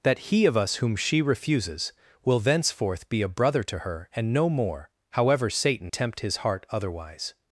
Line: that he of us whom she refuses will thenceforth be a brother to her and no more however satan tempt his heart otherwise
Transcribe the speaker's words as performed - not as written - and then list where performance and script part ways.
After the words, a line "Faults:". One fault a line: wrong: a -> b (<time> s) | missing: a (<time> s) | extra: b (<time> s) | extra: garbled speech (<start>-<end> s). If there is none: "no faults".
that he of us whom she refuses will thenceforth be a brother to her and no more however satan tempt his heart otherwise
Faults:
no faults